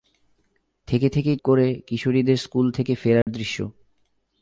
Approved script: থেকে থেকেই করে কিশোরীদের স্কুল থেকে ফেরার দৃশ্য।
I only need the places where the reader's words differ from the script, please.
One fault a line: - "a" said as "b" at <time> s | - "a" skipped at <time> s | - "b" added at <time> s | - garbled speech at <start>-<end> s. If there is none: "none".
none